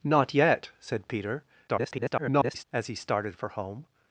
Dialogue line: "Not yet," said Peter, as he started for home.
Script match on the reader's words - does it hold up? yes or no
no